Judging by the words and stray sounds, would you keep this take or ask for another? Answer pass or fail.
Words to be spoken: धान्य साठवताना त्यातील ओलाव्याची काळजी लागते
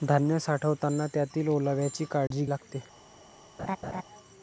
fail